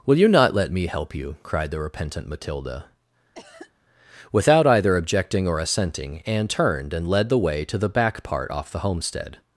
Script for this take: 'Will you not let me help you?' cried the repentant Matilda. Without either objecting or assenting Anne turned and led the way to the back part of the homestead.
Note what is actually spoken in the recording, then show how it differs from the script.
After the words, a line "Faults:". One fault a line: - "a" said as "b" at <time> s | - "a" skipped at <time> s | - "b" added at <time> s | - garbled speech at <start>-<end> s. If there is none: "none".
'Will you not let me help you?' cried the repentant Matilda. Without either objecting or assenting Anne turned and led the way to the back part off the homestead.
Faults:
- "of" said as "off" at 8.5 s